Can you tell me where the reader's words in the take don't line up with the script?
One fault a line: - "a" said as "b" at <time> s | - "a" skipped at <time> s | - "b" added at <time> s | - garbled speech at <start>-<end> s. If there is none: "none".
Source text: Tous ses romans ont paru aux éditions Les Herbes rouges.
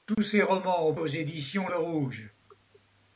- "paru" skipped at 0.9 s
- "Les Herbes" skipped at 1.7 s